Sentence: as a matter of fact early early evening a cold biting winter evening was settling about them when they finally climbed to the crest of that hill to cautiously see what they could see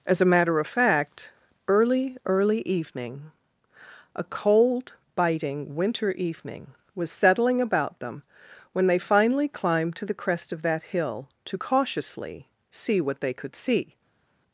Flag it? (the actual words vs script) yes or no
no